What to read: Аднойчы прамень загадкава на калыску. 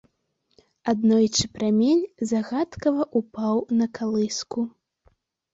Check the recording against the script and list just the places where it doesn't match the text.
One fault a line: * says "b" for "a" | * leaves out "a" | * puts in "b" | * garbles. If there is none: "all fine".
* puts in "ўпаў"